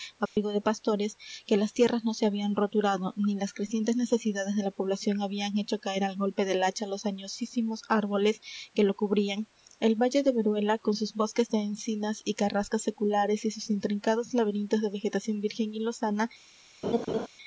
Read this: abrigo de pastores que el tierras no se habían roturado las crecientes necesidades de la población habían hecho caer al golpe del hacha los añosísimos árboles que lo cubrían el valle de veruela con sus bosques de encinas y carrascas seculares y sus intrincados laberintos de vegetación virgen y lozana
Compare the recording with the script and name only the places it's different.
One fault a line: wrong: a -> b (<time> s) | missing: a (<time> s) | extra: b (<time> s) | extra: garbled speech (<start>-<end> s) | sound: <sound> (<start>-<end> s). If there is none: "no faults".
sound: dropout (0.3-0.4 s)
wrong: el -> las (1.6 s)
extra: ni (3.1 s)
sound: laugh (16.8-17.3 s)